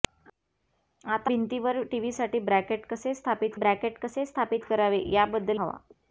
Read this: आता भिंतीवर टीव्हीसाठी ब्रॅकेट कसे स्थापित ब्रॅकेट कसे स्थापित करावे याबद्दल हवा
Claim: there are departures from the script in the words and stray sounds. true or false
false